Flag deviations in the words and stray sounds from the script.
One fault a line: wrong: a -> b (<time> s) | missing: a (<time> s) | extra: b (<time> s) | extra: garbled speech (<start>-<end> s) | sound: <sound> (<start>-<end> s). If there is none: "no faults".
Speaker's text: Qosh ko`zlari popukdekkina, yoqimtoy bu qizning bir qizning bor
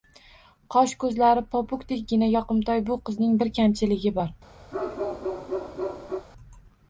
wrong: qizning -> kamchiligi (3.6 s)
sound: bark (4.7-6.3 s)